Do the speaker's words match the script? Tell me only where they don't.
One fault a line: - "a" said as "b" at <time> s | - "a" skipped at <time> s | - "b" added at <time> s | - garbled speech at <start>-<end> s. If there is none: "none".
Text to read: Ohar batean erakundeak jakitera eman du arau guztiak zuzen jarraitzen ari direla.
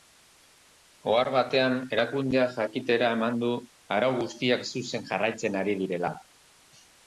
none